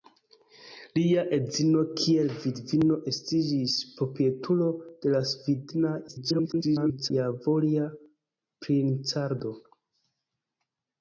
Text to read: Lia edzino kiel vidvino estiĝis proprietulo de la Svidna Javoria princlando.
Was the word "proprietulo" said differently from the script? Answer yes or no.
no